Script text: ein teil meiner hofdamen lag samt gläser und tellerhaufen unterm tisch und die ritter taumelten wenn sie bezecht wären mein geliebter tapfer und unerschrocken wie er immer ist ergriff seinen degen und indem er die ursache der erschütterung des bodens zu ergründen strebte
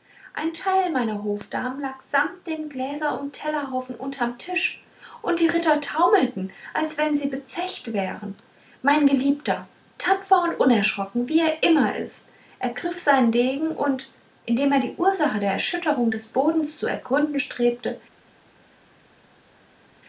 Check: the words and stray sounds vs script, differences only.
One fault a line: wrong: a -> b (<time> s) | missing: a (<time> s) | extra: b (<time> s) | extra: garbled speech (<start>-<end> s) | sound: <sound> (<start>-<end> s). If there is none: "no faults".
extra: dem (2.5 s)
extra: als (6.7 s)